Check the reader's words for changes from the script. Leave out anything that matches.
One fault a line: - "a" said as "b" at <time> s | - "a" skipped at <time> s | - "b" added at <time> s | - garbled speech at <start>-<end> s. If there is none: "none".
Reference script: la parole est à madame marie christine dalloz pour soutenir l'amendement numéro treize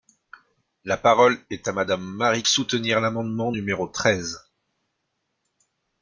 - "christine dalloz pour" skipped at 2.4 s